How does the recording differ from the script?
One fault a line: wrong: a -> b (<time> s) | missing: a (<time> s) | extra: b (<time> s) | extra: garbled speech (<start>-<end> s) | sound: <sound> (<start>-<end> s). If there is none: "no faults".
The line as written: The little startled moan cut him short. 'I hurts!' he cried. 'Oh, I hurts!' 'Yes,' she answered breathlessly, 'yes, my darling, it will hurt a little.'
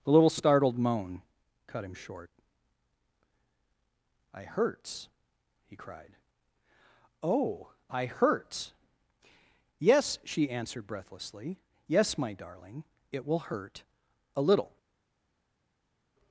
no faults